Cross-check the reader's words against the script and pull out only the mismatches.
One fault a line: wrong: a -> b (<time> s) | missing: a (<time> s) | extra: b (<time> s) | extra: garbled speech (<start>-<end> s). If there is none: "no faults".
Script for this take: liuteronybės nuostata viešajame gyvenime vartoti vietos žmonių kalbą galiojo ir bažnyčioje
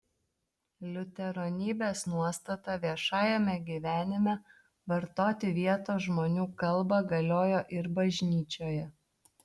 no faults